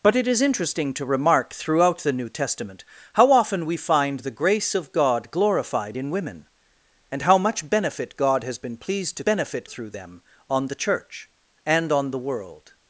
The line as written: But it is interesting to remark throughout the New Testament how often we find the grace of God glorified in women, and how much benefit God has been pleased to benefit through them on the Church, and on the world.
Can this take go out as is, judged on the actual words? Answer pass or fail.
pass